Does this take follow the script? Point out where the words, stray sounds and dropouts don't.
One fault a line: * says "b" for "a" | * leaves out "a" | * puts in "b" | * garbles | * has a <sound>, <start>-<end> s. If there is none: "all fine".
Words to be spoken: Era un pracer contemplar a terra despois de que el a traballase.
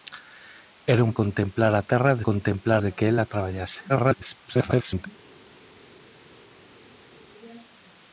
* leaves out "pracer"
* says "contemplar" for "despois"
* garbles